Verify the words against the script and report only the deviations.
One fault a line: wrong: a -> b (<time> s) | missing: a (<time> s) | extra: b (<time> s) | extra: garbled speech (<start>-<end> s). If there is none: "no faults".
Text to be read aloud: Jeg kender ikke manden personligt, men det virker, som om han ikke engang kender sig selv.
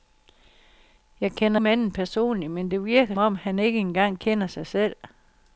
missing: ikke (1.6 s)
missing: som (3.1 s)